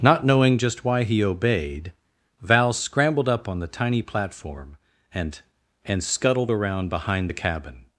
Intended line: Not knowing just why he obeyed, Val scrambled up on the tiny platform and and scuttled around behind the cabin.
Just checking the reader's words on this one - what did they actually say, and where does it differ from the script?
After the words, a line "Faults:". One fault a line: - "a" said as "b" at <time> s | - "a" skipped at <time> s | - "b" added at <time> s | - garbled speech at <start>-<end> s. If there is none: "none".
Not knowing just why he obeyed, Val scrambled up on the tiny platform and and scuttled around behind the cabin.
Faults:
none